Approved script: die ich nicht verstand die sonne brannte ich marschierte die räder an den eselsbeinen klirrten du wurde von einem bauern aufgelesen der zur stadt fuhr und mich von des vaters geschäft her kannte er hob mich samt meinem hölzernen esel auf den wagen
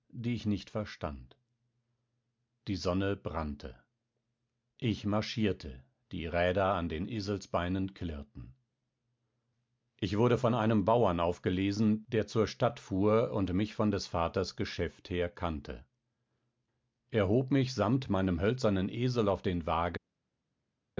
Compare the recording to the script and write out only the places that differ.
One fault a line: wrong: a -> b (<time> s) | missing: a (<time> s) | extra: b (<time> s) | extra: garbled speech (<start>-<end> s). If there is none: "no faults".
wrong: du -> ich (10.0 s)